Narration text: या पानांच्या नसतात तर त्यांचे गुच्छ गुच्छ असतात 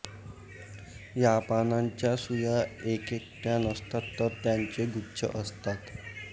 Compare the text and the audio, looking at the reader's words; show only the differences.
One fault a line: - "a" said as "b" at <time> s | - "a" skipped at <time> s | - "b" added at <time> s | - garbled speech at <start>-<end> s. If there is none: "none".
- "सुया एकेकट्या" added at 2.2 s
- "गुच्छ" skipped at 5.3 s